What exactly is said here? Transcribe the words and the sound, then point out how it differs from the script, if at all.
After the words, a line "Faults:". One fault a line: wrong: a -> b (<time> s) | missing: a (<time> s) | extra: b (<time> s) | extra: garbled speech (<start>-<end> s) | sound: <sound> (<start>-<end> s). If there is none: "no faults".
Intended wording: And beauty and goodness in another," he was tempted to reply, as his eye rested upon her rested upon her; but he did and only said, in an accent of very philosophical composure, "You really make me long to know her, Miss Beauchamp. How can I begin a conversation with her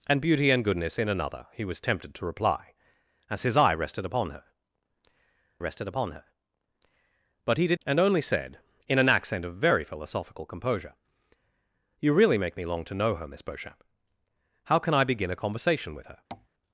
And beauty and goodness in another," he was tempted to reply, as his eye rested upon her rested upon her; but he did and only said, in an accent of very philosophical composure, "You really make me long to know her, Miss Beauchamp. How can I begin a conversation with her
Faults:
sound: tap (16.3-16.5 s)